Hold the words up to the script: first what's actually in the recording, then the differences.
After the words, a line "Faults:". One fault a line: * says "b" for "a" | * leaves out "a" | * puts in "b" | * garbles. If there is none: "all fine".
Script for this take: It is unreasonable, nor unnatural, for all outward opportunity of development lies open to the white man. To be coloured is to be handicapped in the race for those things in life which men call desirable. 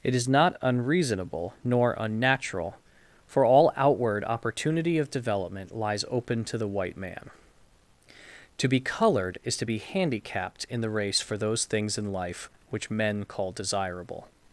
It is not unreasonable, nor unnatural, for all outward opportunity of development lies open to the white man. To be coloured is to be handicapped in the race for those things in life which men call desirable.
Faults:
* puts in "not"